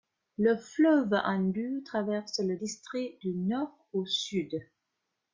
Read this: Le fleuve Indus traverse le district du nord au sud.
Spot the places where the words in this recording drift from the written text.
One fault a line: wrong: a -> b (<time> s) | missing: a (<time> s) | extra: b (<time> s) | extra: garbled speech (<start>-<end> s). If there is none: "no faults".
no faults